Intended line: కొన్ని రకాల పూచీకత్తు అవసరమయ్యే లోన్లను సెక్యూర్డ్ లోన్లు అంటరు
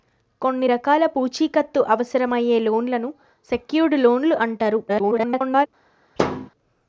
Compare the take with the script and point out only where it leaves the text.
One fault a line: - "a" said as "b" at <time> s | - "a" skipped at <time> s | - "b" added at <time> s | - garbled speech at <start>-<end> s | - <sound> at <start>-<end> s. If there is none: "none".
- garbled speech at 4.9-5.7 s
- thud at 6.2-6.5 s